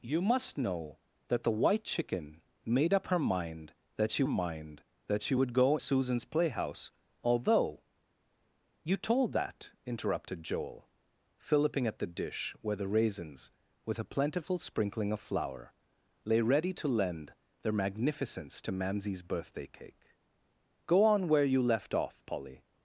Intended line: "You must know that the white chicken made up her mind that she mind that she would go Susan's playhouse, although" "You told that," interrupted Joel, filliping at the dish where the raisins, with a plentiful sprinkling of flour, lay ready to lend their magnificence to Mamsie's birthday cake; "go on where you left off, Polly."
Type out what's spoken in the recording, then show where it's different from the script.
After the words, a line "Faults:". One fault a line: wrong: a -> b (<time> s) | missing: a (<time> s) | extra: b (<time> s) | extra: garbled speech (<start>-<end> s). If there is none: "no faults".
"You must know that the white chicken made up her mind that she mind that she would go Susan's playhouse, although" "You told that," interrupted Joel, filliping at the dish where the raisins, with a plentiful sprinkling of flour, lay ready to lend their magnificence to Mamsie's birthday cake; "go on where you left off, Polly."
Faults:
no faults